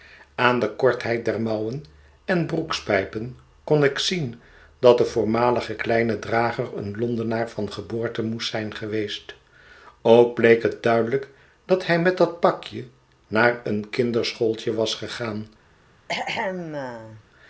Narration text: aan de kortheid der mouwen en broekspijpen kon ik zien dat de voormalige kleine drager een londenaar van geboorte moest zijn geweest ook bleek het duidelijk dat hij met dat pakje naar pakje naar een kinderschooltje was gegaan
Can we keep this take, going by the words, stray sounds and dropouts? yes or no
no